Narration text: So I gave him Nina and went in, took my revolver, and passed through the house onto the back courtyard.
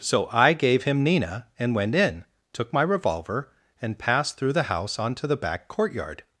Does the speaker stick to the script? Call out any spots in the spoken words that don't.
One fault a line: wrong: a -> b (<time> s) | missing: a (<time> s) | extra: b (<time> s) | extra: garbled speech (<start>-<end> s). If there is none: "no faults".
no faults